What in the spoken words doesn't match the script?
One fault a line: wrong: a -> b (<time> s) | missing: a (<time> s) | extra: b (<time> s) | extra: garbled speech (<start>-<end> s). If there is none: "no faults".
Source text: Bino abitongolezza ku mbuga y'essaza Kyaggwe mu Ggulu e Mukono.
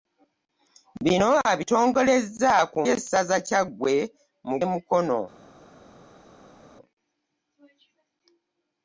missing: mbuga (2.8 s)
missing: Ggulu (4.6 s)